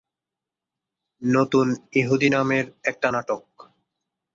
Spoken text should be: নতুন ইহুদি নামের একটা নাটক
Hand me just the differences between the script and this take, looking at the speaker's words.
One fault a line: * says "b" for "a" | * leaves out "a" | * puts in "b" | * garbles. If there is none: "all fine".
all fine